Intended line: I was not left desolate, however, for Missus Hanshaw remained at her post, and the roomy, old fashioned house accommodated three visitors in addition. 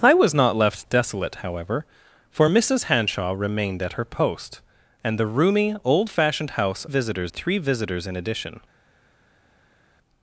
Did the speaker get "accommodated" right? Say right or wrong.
wrong